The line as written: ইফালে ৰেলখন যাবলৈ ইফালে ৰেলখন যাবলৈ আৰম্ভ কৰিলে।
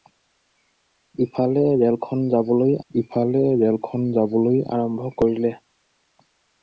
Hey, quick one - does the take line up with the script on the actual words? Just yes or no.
yes